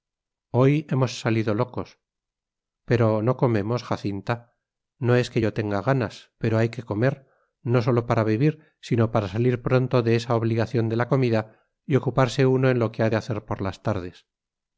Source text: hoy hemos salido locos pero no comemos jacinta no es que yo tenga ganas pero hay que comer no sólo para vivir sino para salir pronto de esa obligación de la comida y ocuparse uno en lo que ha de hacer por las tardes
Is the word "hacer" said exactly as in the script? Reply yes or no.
yes